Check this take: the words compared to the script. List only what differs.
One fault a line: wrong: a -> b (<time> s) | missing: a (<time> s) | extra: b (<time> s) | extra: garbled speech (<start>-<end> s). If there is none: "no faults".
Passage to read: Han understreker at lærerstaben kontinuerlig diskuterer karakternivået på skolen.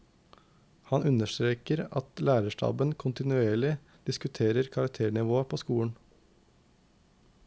no faults